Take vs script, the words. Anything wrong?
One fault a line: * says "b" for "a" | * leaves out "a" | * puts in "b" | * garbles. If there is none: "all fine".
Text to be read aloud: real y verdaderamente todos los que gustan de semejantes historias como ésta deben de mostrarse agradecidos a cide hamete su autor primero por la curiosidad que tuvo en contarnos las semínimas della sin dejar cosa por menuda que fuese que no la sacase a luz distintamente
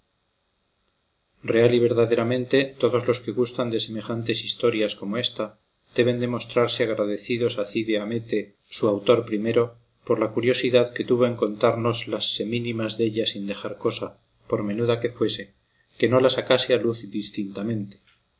all fine